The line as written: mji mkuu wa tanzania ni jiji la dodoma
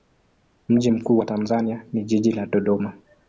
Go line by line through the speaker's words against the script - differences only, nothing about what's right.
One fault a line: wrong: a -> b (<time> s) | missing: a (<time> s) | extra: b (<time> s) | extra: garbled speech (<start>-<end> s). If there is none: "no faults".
no faults